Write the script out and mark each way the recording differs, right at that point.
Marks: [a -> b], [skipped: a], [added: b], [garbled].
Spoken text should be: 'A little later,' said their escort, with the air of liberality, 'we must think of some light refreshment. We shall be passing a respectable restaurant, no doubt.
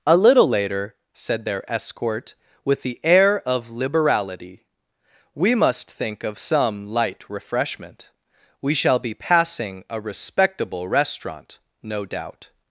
'A little later,' said their escort, with the air of liberality, 'we must think of some light refreshment. We shall be passing a respectable restaurant, no doubt.